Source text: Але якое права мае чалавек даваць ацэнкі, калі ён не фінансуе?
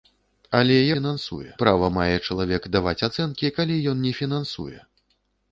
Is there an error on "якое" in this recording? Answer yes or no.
yes